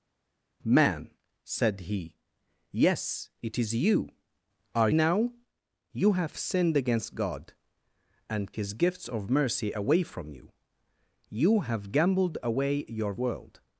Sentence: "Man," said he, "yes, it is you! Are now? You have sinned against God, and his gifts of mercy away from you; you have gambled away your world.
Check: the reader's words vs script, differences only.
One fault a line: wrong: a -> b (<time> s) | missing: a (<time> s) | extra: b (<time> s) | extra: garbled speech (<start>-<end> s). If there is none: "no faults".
no faults